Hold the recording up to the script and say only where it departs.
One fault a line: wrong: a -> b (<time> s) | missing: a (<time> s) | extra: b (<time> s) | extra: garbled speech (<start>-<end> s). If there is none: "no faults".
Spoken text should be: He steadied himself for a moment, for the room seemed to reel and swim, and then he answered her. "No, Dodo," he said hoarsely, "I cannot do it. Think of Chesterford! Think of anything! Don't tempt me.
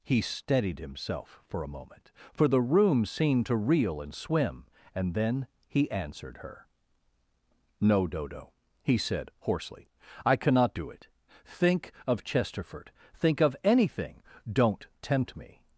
no faults